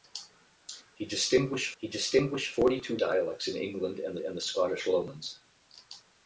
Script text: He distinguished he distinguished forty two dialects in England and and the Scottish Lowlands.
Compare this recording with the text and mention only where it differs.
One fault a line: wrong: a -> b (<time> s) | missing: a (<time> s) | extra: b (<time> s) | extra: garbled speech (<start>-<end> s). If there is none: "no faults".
no faults